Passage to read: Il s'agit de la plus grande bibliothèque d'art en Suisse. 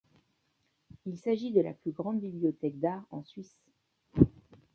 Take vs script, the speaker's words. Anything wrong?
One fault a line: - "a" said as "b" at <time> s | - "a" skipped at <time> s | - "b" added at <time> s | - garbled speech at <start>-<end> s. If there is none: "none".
none